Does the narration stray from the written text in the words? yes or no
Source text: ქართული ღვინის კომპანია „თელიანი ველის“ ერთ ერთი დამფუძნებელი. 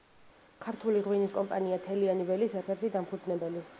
no